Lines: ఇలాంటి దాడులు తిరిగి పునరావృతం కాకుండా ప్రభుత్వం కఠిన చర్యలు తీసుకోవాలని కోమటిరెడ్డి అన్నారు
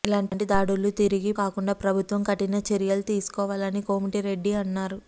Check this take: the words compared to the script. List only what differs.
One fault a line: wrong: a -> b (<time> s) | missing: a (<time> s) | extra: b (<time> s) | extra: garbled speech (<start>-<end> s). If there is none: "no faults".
missing: పునరావృతం (1.3 s)